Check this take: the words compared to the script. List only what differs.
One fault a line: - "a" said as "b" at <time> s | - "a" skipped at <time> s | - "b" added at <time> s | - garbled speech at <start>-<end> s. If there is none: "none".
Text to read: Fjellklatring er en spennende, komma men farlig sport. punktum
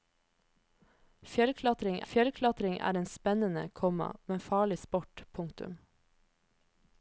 - "fjellklatring" added at 2.1 s